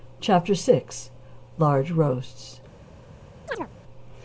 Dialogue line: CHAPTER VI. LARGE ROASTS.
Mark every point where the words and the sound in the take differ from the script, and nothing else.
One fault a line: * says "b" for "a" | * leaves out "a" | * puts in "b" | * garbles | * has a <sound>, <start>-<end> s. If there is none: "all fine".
* has a chirp, 3.5-3.7 s